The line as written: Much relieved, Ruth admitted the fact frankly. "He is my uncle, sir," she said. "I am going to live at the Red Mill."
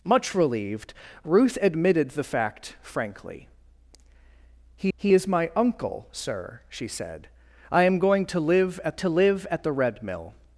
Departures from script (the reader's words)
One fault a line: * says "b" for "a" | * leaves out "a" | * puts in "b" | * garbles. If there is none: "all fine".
* puts in "he"
* puts in "to live at"